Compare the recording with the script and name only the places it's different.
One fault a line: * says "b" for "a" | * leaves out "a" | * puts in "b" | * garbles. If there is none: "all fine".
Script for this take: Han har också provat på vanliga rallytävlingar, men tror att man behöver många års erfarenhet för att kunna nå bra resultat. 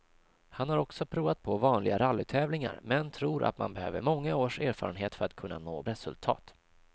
* leaves out "bra"